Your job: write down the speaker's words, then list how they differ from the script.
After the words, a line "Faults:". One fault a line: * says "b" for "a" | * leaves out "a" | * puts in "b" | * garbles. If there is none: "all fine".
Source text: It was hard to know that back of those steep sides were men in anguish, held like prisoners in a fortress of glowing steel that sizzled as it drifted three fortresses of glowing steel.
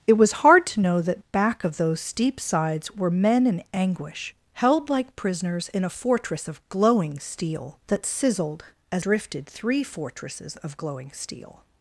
It was hard to know that back of those steep sides were men in anguish, held like prisoners in a fortress of glowing steel that sizzled as drifted three fortresses of glowing steel.
Faults:
* leaves out "it"